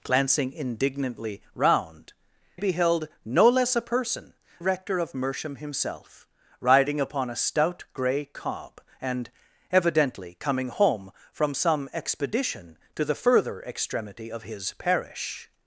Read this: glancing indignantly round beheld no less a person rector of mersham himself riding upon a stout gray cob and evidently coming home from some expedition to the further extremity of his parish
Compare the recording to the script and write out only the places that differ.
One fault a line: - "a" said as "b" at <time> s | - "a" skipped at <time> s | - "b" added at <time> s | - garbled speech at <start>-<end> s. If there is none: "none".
none